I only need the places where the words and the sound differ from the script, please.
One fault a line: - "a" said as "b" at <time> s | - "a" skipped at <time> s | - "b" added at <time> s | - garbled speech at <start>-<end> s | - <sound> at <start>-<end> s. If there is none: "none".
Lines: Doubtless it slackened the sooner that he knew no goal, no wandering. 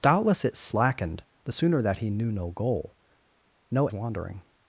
none